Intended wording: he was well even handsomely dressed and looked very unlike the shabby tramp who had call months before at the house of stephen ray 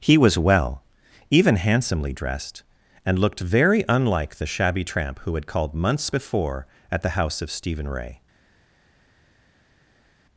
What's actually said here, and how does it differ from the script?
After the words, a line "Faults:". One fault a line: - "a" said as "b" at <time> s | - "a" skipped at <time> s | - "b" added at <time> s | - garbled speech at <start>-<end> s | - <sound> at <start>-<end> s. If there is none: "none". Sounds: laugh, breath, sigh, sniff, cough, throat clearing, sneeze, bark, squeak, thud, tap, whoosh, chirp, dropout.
he was well even handsomely dressed and looked very unlike the shabby tramp who had called months before at the house of stephen ray
Faults:
- "call" said as "called" at 5.5 s